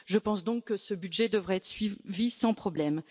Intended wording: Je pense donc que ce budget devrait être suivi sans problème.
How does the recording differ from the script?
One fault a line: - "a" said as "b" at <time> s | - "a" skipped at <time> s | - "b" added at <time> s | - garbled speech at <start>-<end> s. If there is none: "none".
none